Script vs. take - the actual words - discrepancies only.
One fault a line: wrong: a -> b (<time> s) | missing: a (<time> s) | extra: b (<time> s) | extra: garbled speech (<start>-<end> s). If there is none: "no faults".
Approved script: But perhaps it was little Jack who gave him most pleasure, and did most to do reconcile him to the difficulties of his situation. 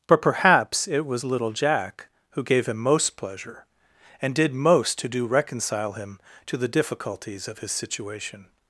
no faults